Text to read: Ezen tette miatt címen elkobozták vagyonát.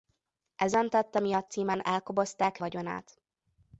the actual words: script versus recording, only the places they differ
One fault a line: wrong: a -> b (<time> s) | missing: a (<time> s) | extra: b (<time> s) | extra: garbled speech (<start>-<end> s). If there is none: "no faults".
no faults